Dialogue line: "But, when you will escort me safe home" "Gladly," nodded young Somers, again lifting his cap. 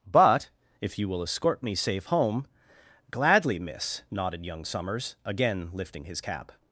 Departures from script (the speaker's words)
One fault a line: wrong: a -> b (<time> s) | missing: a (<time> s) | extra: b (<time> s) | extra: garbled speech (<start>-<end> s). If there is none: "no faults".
wrong: when -> if (0.8 s)
extra: miss (3.6 s)